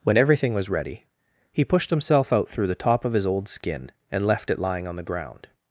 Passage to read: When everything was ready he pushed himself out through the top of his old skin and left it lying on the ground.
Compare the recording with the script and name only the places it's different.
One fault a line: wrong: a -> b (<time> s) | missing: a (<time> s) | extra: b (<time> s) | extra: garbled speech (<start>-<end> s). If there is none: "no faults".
no faults